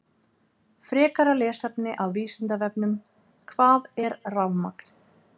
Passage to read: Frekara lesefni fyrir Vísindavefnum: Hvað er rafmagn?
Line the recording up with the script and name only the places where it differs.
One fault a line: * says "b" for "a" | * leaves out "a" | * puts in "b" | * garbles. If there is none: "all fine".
* says "af" for "fyrir"